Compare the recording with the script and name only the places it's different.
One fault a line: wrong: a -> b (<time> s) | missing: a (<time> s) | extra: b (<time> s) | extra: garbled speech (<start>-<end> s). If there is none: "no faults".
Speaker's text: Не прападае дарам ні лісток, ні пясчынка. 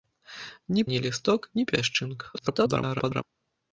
missing: прападае дарам (0.8 s)
extra: garbled speech (2.3-3.2 s)